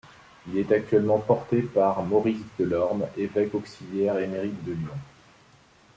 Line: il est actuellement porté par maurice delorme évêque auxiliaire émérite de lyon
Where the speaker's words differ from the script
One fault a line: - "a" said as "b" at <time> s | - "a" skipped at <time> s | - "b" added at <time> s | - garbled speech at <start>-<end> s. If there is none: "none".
none